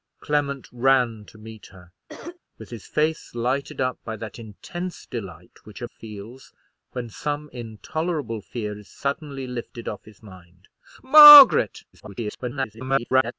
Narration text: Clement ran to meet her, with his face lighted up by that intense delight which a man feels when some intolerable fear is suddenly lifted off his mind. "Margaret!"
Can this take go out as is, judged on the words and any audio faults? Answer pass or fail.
fail